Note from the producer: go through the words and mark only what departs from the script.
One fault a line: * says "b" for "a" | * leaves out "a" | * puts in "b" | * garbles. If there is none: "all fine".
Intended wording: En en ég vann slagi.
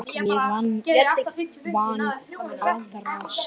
* leaves out "en"
* puts in "aðra"